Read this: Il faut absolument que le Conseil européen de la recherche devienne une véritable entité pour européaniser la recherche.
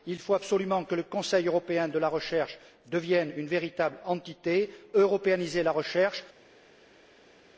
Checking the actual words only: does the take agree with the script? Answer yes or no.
no